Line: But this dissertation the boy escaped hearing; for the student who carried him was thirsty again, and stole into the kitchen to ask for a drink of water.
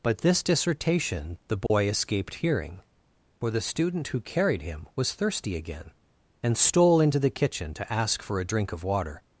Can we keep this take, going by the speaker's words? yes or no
yes